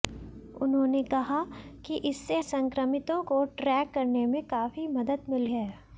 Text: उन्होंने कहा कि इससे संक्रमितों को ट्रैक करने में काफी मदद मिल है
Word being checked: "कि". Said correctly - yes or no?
yes